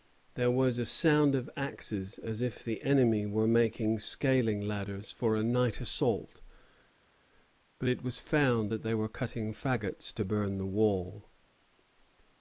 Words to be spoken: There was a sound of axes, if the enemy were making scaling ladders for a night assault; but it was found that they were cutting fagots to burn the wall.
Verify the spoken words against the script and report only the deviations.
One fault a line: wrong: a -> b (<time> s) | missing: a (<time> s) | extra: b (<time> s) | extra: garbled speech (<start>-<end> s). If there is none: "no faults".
extra: as (2.2 s)